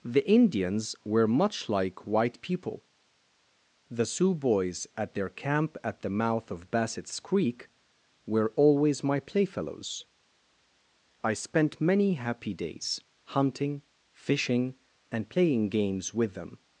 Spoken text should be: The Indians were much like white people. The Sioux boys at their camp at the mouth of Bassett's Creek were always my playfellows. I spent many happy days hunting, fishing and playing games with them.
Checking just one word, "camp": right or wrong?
right